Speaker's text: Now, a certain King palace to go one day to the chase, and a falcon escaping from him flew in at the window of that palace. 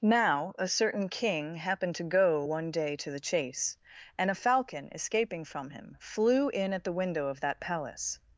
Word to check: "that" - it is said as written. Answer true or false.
true